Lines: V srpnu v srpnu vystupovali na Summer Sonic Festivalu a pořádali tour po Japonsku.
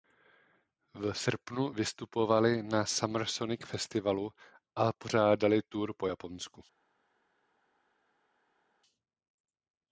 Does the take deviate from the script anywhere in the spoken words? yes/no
yes